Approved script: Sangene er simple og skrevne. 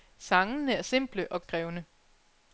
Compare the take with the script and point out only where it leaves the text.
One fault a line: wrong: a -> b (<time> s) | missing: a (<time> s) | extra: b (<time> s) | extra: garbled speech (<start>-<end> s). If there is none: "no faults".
no faults